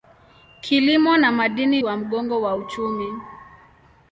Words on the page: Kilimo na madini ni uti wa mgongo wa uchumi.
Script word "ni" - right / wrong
wrong